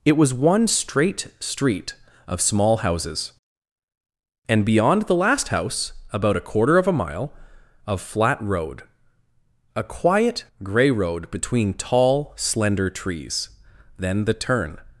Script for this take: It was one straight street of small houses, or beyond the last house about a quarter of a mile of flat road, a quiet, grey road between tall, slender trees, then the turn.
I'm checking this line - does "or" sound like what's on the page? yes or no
no